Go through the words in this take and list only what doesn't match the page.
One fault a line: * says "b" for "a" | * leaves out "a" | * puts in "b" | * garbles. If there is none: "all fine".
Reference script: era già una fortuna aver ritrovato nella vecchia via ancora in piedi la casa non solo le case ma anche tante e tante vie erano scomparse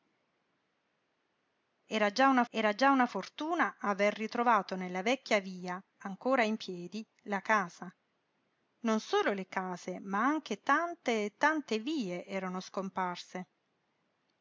* puts in "era già una"